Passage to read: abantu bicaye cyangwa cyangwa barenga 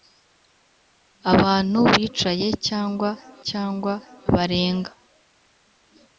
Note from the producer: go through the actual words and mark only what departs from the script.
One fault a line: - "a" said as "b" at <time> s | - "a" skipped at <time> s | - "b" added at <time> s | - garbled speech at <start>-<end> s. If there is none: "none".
none